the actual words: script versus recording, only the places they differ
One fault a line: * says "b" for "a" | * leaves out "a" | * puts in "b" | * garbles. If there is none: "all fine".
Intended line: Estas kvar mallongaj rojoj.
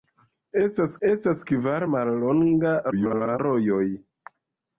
* puts in "estas"
* garbles